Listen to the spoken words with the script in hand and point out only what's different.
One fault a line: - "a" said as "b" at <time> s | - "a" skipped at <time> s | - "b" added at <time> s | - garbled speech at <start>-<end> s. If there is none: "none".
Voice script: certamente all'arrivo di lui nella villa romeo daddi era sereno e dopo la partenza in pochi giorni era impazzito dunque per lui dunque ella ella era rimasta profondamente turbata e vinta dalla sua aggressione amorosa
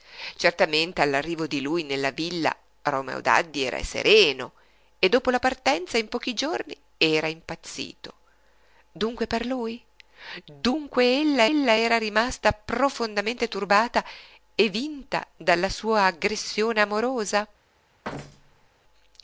none